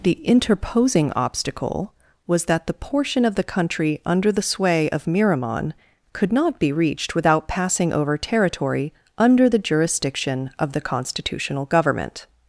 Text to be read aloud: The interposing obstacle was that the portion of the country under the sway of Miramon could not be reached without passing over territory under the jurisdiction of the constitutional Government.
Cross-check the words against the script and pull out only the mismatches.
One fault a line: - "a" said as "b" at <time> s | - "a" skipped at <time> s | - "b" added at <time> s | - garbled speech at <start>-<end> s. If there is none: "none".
none